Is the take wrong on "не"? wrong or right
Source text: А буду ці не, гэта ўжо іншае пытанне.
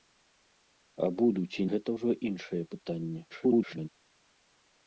wrong